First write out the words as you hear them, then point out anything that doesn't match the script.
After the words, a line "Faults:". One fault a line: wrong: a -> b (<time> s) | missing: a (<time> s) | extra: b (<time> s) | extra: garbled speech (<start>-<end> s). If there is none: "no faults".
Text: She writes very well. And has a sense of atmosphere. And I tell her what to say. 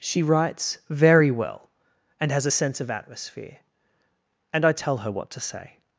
She writes very well. And has a sense of atmosphere. And I tell her what to say.
Faults:
no faults